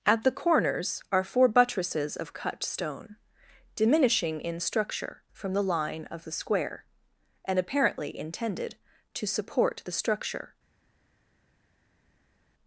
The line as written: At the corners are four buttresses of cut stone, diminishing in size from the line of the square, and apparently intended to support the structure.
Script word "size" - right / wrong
wrong